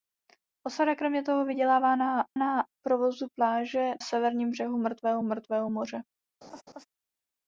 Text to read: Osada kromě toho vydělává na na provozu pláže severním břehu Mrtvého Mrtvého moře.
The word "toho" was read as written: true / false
true